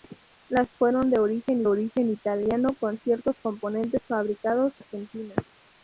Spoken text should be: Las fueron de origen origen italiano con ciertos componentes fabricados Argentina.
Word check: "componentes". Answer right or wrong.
right